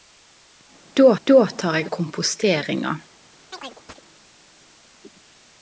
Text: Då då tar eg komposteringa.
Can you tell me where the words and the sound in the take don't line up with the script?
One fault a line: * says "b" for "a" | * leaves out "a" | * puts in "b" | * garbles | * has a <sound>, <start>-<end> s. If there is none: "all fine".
* has a chirp, 3.5-4.0 s